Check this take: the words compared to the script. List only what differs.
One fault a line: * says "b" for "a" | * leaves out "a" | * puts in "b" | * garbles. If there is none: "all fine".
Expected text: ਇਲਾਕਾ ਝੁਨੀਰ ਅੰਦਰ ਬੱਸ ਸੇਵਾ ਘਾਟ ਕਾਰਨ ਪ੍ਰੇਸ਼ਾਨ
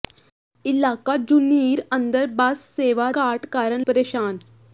all fine